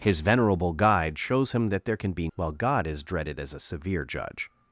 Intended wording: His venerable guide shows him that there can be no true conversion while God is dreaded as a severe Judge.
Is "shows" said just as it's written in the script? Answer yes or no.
yes